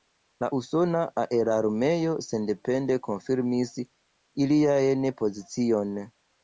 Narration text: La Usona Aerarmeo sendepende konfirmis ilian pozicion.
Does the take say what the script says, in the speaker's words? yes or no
yes